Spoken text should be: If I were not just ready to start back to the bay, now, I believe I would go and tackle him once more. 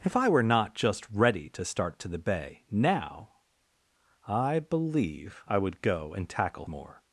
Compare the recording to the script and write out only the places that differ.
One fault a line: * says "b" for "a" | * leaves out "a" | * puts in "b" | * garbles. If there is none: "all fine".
* leaves out "back"
* leaves out "him once"